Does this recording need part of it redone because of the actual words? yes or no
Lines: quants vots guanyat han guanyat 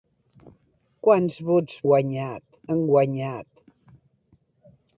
no